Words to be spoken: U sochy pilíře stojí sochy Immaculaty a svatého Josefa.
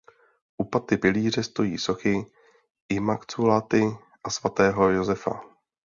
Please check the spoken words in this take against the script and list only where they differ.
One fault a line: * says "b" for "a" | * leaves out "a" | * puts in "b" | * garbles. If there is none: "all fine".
* says "paty" for "sochy"